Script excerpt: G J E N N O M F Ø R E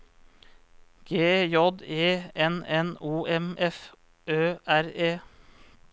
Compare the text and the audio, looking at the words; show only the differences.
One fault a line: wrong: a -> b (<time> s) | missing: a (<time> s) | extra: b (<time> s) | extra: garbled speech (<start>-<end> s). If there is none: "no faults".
no faults